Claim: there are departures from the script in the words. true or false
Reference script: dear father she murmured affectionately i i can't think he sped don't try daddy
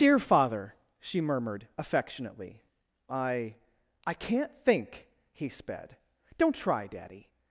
false